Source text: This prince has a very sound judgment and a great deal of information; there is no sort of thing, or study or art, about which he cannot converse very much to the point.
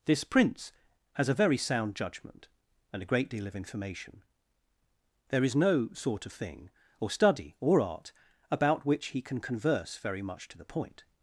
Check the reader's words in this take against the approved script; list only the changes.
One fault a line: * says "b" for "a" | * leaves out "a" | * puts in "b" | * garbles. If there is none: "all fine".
* says "can" for "cannot"